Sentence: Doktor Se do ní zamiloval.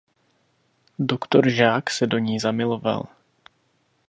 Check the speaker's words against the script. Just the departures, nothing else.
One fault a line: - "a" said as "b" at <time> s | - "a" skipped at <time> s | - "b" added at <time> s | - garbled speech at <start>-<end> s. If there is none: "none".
- "Žák" added at 1.5 s